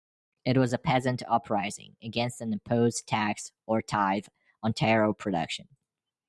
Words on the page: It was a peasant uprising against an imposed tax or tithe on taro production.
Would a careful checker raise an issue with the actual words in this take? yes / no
no